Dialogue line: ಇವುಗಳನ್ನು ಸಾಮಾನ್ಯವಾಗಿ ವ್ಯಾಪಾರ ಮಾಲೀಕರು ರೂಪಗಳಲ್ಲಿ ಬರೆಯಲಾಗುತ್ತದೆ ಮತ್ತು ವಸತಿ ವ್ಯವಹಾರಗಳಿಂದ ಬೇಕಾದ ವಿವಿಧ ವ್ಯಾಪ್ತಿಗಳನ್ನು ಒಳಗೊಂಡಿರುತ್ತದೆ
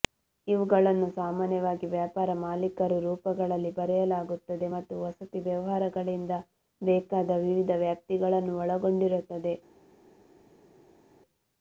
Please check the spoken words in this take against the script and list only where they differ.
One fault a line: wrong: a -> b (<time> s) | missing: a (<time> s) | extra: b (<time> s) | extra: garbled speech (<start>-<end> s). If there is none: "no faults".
no faults